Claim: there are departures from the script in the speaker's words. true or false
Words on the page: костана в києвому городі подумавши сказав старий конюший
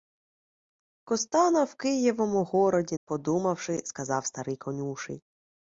false